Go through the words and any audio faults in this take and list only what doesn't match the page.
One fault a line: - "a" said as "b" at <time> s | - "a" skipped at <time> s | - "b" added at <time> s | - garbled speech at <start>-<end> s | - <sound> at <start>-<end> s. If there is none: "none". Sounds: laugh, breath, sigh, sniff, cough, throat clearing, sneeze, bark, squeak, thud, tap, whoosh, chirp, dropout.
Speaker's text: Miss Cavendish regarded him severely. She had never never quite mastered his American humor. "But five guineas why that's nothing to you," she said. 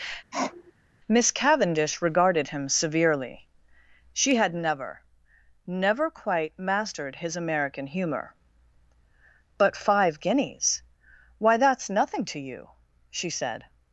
- sniff at 0.3-0.7 s